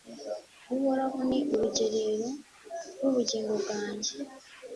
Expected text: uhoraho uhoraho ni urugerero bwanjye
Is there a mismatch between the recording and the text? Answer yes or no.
yes